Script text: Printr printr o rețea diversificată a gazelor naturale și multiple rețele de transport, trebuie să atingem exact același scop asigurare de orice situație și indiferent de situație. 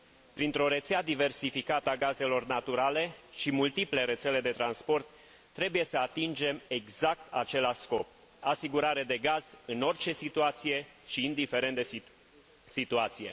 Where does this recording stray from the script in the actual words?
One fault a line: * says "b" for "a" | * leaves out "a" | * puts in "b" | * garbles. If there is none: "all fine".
* leaves out "printr"
* puts in "gaz în"